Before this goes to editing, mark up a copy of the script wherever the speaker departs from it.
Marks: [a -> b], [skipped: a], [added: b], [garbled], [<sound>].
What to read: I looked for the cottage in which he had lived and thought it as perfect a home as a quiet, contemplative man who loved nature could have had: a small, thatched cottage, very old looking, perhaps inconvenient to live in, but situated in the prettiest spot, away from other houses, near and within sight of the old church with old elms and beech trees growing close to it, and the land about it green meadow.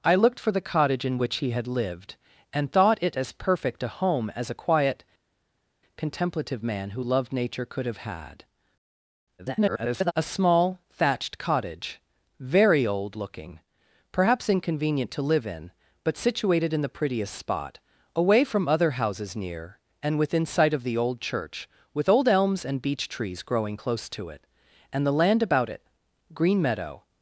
I looked for the cottage in which he had lived and thought it as perfect a home as a quiet, contemplative man who loved nature could have had: [garbled] a small, thatched cottage, very old looking, perhaps inconvenient to live in, but situated in the prettiest spot, away from other houses, near and within sight of the old church with old elms and beech trees growing close to it, and the land about it green meadow.